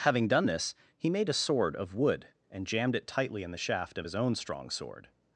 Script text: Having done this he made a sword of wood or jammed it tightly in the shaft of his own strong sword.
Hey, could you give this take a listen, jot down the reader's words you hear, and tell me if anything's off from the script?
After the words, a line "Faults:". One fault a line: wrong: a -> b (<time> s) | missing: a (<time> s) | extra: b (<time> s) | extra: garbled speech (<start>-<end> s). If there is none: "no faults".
Having done this he made a sword of wood and jammed it tightly in the shaft of his own strong sword.
Faults:
wrong: or -> and (2.5 s)